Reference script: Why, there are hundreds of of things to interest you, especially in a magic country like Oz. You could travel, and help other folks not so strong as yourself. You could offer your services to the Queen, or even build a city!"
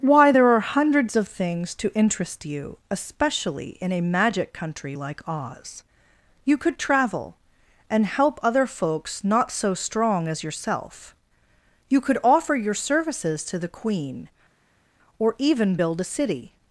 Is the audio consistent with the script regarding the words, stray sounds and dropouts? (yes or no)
no